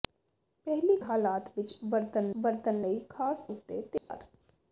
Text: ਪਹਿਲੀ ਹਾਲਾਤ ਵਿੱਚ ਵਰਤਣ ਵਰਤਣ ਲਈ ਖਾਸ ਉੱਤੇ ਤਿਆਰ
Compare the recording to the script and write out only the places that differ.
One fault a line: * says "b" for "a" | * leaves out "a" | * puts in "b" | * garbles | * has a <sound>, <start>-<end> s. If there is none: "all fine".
* has a dropout, 4.0-4.1 s